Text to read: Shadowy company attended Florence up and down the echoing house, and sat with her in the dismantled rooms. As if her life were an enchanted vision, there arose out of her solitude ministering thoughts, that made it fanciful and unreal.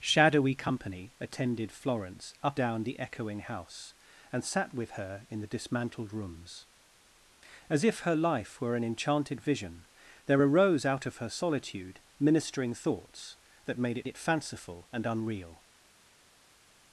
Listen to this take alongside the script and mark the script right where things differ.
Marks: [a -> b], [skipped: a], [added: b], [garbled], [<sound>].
Shadowy company attended Florence up [skipped: and] down the echoing house, and sat with her in the dismantled rooms. As if her life were an enchanted vision, there arose out of her solitude ministering thoughts, that made it [added: it] fanciful and unreal.